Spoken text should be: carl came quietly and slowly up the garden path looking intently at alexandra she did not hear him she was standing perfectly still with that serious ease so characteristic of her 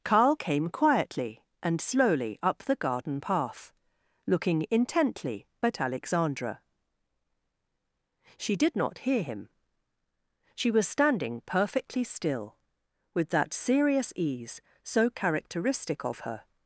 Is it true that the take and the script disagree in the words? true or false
false